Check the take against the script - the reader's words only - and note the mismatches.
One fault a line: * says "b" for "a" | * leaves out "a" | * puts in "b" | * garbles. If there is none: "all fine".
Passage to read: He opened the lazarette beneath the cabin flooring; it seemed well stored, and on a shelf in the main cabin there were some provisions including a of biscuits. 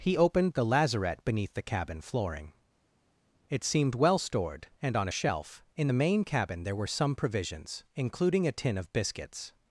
* puts in "tin"